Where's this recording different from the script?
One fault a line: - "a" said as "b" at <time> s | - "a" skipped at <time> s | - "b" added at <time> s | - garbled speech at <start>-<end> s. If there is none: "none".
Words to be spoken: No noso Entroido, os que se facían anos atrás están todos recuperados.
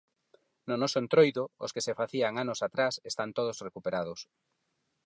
none